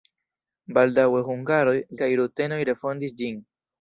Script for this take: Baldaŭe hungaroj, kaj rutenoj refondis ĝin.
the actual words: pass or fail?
pass